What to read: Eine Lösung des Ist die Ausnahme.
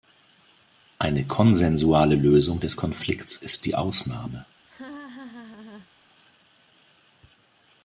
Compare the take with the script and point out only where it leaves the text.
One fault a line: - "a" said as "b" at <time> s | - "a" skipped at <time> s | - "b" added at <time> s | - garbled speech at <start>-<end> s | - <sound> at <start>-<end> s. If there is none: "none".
- "konsensuale" added at 1.2 s
- "Konflikts" added at 2.8 s
- laugh at 4.7-5.9 s